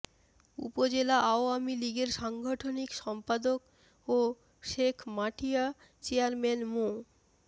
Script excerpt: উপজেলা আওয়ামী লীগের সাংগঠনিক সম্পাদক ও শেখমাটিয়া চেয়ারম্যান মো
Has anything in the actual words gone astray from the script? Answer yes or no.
no